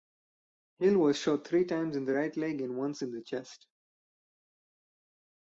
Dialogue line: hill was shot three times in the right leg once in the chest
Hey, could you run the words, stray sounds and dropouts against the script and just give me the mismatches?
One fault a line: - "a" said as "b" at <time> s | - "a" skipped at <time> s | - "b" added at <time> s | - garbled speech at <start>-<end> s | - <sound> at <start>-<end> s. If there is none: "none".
- "and" added at 2.6 s